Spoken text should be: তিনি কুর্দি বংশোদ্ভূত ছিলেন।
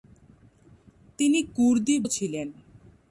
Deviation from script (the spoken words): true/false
true